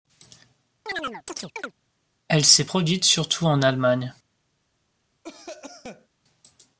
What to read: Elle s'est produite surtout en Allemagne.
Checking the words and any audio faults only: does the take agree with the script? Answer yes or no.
no